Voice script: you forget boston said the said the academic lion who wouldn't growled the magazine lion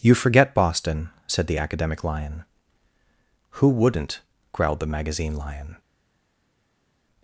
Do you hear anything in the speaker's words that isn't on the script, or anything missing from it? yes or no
yes